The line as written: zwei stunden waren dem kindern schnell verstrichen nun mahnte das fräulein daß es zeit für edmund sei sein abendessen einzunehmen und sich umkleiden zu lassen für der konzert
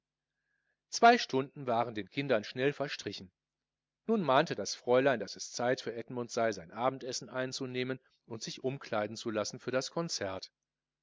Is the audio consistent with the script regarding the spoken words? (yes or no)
no